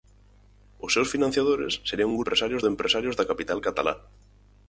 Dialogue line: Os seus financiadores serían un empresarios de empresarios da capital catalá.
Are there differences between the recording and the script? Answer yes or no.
no